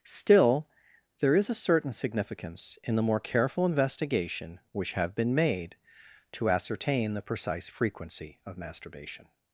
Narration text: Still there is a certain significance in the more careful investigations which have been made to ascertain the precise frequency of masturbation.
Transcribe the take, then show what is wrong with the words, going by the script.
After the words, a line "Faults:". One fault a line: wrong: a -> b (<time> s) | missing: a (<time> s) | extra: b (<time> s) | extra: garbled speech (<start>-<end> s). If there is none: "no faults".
Still there is a certain significance in the more careful investigation which have been made to ascertain the precise frequency of masturbation.
Faults:
wrong: investigations -> investigation (3.6 s)